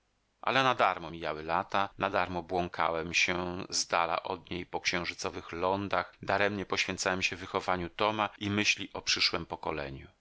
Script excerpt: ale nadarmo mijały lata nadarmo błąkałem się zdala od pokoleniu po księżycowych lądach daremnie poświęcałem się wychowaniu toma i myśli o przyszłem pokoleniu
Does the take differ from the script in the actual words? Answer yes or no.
yes